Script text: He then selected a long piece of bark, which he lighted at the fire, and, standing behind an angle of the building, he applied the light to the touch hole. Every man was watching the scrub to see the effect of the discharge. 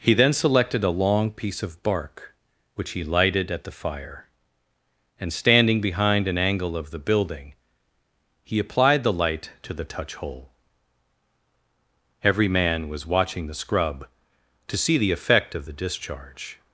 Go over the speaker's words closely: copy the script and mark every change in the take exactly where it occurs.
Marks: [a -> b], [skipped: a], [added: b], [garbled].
He then selected a long piece of bark, which he lighted at the fire, and, standing behind an angle of the building, he applied the light to the touch hole. Every man was watching the scrub to see the effect of the discharge.